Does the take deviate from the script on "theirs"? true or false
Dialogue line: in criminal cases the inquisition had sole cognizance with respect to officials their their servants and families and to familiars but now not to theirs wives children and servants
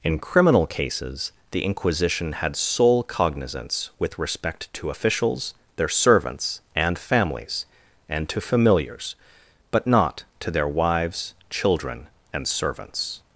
true